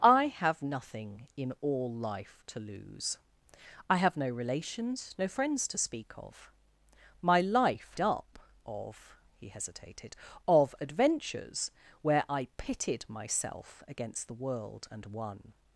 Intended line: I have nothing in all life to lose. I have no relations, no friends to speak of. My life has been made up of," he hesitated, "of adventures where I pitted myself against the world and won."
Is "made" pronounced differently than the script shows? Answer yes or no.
yes